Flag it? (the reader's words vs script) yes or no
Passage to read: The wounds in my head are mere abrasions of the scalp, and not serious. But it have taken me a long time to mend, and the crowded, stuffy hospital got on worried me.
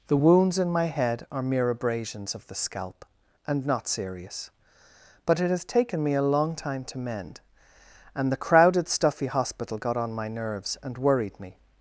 yes